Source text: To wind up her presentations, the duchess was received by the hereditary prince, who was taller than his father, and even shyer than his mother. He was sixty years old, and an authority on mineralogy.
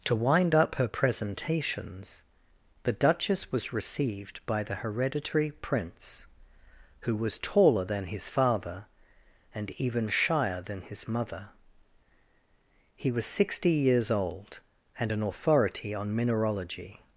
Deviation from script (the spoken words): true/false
false